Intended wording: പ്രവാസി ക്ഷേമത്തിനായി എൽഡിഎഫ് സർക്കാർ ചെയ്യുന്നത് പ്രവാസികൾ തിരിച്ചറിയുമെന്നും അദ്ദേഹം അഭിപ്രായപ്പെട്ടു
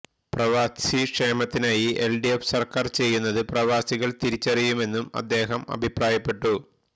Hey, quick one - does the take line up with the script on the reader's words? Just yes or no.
yes